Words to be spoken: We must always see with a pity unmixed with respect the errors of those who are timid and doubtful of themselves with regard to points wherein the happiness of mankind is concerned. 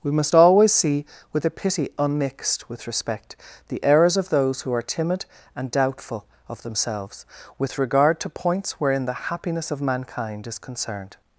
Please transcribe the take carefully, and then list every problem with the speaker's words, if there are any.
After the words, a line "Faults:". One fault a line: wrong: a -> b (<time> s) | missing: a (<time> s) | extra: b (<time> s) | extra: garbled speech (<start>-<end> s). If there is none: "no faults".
We must always see with a pity unmixed with respect the errors of those who are timid and doubtful of themselves with regard to points wherein the happiness of mankind is concerned.
Faults:
no faults